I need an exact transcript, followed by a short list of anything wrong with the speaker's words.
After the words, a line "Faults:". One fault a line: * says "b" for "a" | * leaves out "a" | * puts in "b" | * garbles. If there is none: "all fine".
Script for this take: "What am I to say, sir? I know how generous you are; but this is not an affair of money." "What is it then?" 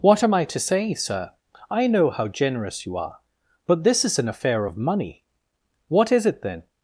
"What am I to say, sir? I know how generous you are; but this is an affair of money." "What is it then?"
Faults:
* leaves out "not"